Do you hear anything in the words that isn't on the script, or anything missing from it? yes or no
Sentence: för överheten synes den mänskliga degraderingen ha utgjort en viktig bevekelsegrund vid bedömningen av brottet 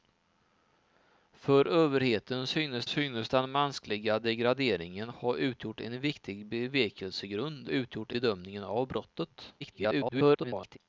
yes